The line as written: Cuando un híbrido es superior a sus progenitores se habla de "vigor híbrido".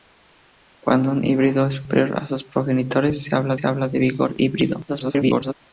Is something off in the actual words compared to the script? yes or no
yes